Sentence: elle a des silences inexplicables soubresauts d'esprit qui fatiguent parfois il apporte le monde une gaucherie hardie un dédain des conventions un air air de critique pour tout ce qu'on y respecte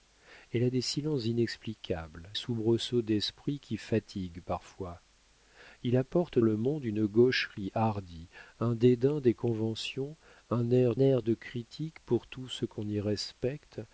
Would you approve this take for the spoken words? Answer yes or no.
yes